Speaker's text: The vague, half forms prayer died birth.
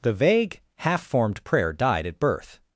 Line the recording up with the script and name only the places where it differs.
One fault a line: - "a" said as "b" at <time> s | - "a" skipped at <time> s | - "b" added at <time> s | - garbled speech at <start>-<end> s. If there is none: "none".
- "forms" said as "formed" at 1.0 s
- "at" added at 2.1 s